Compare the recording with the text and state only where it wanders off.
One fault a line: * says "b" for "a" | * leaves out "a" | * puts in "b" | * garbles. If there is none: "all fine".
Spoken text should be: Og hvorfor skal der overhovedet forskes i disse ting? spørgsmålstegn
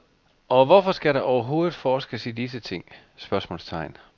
all fine